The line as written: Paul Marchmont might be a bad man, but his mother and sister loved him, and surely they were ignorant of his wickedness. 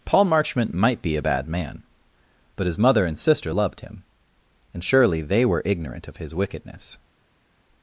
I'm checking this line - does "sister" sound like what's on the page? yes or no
yes